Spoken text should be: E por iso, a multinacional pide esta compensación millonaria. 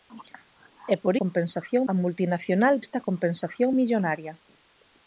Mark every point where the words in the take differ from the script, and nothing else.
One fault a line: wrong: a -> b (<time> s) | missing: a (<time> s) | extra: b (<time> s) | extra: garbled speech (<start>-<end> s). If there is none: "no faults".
wrong: iso -> compensación (1.2 s)
missing: pide (2.7 s)